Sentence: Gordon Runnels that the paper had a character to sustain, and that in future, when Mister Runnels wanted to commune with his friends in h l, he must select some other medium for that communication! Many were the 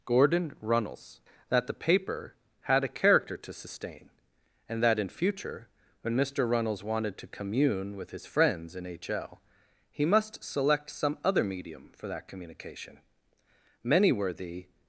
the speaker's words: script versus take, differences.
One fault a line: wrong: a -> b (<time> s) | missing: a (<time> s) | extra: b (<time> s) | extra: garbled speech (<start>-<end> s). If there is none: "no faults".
no faults